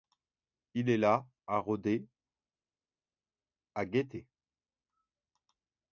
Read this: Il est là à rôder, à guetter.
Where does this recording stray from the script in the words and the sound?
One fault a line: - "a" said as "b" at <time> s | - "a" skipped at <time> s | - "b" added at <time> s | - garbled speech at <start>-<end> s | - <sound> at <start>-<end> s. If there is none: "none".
none